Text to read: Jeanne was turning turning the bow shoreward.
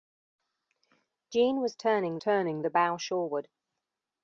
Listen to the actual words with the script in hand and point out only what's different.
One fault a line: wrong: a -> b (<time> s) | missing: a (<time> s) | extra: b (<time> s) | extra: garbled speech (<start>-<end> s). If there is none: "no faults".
no faults